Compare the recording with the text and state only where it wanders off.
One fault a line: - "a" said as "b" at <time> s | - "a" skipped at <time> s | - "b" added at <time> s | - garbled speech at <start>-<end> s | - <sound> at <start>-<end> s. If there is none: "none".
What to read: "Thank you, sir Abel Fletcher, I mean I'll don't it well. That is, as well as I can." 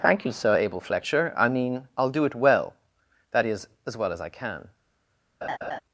- "don't" said as "do" at 2.1 s
- laugh at 5.4-5.8 s